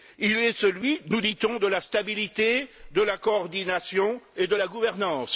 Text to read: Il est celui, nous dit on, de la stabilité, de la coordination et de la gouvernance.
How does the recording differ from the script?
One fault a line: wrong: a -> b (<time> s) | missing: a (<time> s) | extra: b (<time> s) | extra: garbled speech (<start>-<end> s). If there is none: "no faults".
no faults